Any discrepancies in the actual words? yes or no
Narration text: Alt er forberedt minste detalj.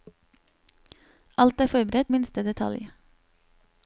no